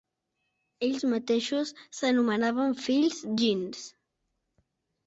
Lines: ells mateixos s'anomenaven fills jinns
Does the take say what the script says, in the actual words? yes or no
yes